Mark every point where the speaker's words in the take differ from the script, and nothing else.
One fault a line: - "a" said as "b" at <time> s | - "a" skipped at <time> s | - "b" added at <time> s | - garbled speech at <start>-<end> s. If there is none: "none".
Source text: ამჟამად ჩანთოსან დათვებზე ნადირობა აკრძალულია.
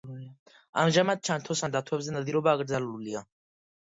none